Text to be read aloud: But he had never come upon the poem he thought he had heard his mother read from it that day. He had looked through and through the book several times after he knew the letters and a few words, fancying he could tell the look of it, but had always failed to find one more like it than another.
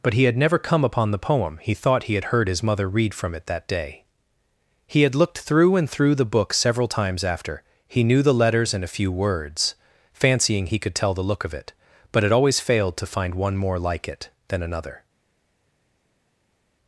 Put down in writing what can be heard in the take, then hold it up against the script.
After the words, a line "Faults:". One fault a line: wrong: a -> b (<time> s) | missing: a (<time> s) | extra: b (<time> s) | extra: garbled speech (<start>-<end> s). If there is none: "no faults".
But he had never come upon the poem he thought he had heard his mother read from it that day. He had looked through and through the book several times after he knew the letters and a few words, fancying he could tell the look of it, but had always failed to find one more like it than another.
Faults:
no faults